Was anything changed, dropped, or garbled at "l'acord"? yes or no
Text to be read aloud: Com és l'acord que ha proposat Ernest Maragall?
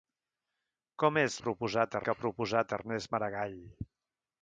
yes